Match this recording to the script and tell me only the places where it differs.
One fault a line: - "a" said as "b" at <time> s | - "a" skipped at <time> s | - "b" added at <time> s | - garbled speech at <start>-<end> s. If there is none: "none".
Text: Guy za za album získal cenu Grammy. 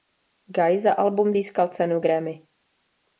- "za" skipped at 0.9 s